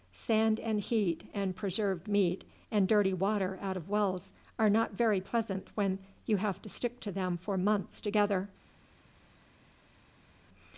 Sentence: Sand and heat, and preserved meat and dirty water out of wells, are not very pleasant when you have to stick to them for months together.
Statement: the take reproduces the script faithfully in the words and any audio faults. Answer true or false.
true